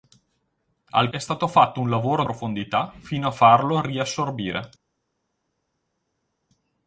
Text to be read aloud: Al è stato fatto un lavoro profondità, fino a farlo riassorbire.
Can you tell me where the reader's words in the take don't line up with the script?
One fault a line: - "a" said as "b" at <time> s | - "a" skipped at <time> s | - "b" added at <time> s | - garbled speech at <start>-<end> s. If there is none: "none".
none